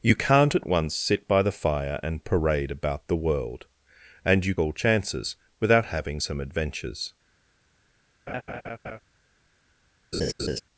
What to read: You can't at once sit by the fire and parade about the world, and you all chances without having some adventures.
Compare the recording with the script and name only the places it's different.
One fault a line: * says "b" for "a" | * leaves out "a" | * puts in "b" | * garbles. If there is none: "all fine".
all fine